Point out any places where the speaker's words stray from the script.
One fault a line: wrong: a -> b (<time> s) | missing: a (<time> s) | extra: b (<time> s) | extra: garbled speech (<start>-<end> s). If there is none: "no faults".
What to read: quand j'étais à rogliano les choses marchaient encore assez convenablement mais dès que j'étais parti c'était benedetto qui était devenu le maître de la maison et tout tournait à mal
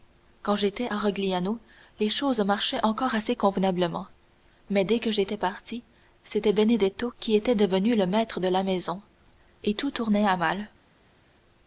no faults